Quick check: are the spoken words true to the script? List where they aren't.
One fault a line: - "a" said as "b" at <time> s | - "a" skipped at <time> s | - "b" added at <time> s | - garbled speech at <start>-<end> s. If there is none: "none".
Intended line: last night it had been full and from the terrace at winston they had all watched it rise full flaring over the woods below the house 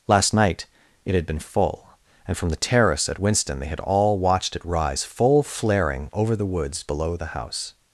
none